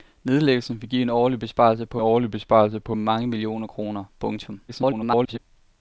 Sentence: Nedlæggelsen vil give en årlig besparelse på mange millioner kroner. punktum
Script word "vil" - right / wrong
right